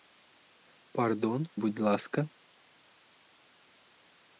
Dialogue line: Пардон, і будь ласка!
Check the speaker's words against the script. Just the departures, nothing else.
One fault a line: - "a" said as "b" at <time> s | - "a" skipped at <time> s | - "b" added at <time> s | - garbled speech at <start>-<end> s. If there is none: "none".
- "і" skipped at 1.5 s